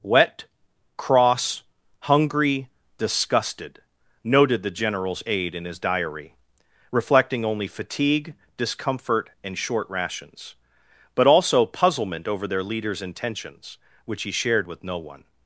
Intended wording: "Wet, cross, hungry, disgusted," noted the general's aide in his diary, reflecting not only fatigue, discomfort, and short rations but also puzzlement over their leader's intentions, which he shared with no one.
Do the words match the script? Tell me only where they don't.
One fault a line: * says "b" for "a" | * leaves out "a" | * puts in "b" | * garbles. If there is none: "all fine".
* leaves out "not"